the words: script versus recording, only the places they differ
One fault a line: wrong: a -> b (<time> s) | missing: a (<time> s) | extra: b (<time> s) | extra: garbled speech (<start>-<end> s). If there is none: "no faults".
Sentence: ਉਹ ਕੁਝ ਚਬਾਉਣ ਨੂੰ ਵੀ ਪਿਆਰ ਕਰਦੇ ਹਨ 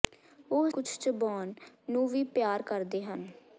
no faults